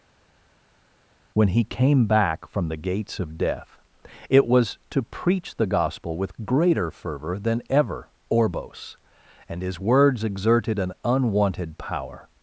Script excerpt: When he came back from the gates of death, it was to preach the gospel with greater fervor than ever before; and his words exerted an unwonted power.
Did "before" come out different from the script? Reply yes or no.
yes